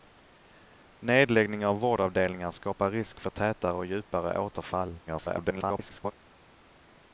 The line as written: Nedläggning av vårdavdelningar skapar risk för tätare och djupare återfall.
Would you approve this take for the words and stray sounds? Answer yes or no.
no